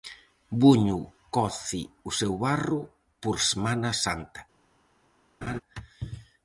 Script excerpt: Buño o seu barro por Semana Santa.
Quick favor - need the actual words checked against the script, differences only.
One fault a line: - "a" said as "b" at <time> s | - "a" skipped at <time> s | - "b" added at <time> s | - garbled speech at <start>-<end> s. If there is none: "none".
- "coce" added at 1.4 s